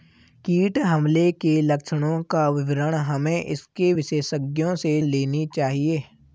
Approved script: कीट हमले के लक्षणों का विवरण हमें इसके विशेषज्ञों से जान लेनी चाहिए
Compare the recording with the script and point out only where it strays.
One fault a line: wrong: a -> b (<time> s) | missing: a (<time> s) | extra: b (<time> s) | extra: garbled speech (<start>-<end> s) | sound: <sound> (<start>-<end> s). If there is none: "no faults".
missing: जान (5.0 s)